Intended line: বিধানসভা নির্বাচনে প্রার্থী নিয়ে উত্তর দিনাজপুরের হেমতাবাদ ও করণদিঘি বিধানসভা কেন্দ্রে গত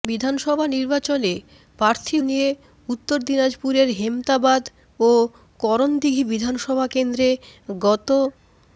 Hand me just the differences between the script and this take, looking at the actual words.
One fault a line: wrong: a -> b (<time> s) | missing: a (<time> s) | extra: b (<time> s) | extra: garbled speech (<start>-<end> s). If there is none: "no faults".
no faults